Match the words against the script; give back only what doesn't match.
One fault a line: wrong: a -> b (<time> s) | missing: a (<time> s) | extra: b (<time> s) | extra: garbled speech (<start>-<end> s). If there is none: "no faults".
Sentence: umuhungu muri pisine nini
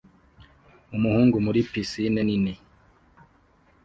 no faults